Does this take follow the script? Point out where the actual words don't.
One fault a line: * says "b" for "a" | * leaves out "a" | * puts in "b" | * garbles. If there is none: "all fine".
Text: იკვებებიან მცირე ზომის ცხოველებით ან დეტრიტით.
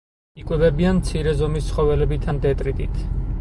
all fine